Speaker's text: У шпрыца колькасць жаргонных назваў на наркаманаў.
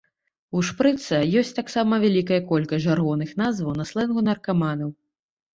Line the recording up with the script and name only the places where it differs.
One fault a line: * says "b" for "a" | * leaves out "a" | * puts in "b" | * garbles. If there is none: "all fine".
* puts in "ёсць таксама вялікая"
* puts in "слэнгу"